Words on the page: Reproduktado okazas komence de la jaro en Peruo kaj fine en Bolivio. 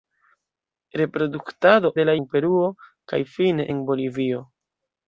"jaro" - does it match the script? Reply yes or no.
no